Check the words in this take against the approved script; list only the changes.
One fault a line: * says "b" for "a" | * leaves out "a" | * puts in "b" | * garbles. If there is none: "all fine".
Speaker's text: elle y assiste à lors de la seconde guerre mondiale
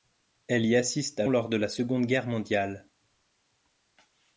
all fine